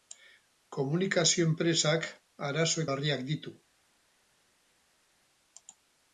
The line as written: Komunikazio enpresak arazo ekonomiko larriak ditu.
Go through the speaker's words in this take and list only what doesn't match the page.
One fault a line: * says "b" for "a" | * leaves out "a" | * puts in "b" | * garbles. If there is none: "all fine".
* leaves out "ekonomiko"